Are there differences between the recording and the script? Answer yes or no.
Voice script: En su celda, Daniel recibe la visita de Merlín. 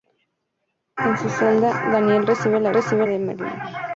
yes